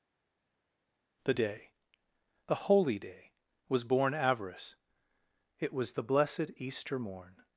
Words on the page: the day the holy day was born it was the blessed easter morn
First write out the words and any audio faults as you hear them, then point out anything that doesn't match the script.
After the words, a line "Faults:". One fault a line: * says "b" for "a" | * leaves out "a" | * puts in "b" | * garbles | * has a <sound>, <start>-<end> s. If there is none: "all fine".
the day the holy day was born avarice it was the blessed easter morn
Faults:
* puts in "avarice"